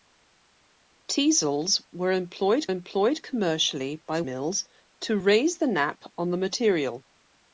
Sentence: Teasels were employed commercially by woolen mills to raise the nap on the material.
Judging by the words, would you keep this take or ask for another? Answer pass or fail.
fail